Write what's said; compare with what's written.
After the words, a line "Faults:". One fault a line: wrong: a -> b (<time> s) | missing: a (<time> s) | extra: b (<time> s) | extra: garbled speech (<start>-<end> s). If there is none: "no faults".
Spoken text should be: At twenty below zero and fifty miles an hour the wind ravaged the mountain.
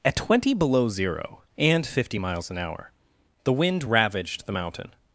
At twenty below zero and fifty miles an hour the wind ravaged the mountain.
Faults:
no faults